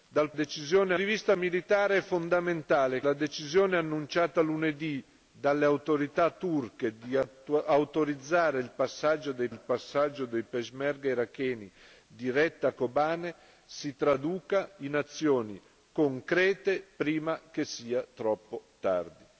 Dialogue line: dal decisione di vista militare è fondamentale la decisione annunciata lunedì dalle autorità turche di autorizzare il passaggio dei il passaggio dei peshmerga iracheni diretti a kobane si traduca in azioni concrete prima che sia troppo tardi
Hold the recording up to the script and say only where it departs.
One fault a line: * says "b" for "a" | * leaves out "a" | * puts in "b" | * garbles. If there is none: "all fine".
all fine